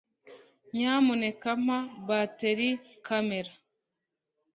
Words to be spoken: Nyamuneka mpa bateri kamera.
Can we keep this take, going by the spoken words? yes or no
yes